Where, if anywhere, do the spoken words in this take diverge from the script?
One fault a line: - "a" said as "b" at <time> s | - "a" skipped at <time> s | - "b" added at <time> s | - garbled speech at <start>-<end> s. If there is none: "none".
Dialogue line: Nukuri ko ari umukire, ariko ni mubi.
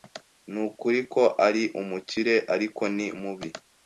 none